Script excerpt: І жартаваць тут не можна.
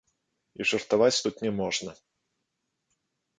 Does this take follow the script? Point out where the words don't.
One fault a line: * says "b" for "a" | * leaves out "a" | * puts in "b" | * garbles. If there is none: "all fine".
all fine